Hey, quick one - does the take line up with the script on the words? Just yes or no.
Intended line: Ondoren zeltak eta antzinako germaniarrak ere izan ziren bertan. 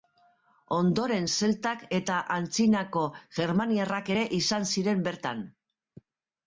yes